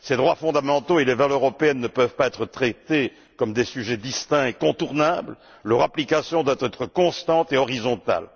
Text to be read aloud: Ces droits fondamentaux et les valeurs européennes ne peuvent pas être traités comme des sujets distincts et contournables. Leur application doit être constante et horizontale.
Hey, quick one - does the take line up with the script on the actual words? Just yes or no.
yes